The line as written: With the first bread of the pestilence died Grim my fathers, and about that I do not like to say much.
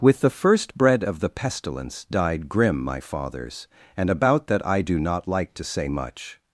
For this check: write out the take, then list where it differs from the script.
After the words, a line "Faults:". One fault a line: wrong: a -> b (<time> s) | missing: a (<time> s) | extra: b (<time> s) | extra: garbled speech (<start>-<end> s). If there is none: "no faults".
With the first bread of the pestilence died Grim my fathers, and about that I do not like to say much.
Faults:
no faults